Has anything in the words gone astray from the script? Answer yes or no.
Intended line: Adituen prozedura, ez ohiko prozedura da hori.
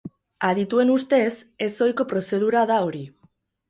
yes